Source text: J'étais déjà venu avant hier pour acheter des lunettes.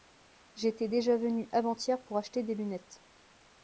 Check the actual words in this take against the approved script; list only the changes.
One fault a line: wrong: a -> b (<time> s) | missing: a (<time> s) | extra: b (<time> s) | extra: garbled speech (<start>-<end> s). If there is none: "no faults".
no faults